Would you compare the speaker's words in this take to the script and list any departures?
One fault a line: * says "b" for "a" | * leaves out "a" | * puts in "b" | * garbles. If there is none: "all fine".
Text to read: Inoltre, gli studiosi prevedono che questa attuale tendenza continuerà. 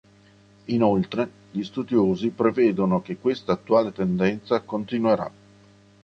all fine